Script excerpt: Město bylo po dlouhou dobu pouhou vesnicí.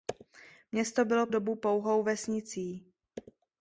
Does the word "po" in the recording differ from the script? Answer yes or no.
yes